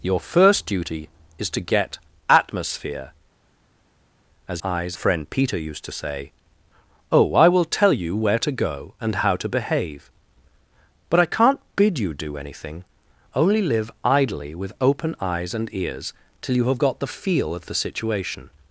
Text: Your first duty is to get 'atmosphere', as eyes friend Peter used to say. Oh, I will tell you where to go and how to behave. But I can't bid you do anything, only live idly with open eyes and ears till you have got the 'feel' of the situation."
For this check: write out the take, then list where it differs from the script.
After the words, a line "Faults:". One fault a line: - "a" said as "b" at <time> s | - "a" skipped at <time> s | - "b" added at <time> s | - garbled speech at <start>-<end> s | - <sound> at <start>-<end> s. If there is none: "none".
Your first duty is to get 'atmosphere', as eyes friend Peter used to say. Oh, I will tell you where to go and how to behave. But I can't bid you do anything, only live idly with open eyes and ears till you have got the 'feel' of the situation."
Faults:
none